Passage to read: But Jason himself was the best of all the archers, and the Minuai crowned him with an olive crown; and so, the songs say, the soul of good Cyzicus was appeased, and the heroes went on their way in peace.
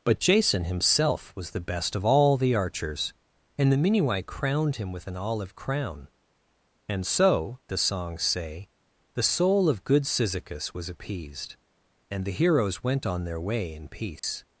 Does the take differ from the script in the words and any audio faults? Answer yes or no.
yes